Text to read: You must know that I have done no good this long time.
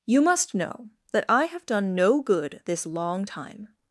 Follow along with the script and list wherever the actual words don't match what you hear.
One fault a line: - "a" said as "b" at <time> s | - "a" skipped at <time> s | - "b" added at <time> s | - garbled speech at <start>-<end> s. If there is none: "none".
none